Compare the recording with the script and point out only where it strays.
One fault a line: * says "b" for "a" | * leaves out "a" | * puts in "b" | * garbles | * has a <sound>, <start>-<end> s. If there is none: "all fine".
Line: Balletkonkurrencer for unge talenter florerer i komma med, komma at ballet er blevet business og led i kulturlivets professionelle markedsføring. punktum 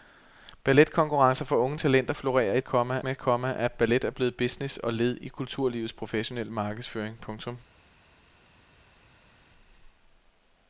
all fine